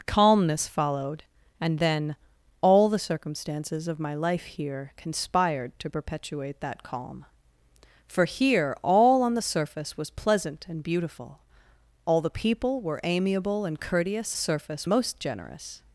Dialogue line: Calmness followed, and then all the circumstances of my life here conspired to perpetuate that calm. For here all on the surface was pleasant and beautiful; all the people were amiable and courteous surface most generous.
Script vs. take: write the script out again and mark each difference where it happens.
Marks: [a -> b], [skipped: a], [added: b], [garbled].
Calmness followed, and then all the circumstances of my life here conspired to perpetuate that calm. For here all on the surface was pleasant and beautiful; all the people were amiable and courteous surface most generous.